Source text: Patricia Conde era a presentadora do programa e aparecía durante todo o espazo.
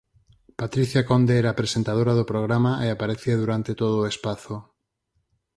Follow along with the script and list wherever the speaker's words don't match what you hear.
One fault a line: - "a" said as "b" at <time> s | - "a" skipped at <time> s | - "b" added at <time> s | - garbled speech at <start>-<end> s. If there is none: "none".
none